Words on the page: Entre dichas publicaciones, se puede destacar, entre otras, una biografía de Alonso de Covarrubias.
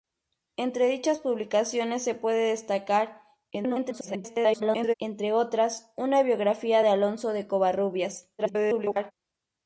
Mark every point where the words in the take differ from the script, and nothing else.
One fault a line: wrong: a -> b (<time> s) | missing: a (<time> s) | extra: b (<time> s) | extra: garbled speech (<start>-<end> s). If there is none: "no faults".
extra: garbled speech (3.5-4.9 s)
extra: garbled speech (8.4-9.1 s)